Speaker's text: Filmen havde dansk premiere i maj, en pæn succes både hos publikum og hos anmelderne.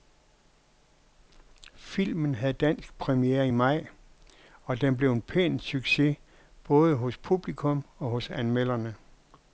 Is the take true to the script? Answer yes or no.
no